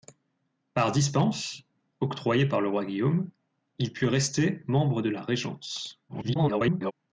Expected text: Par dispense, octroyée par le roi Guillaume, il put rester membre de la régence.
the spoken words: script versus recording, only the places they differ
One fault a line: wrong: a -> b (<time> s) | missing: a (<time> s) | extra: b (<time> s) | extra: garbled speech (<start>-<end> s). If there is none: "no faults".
extra: garbled speech (6.1-6.9 s)